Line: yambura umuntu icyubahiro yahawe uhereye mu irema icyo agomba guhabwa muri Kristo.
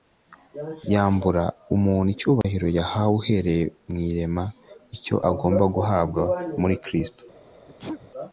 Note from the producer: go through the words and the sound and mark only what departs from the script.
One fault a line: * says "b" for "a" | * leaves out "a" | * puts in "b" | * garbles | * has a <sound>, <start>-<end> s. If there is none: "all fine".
* has a dropout, 2.4-2.4 s
* has a sneeze, 7.7-8.1 s